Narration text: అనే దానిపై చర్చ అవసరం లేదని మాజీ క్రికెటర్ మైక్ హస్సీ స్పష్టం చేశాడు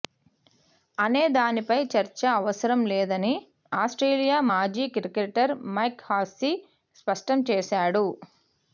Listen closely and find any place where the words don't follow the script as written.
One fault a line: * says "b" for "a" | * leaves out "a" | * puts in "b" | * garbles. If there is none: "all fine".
* puts in "ఆస్ట్రేలియా"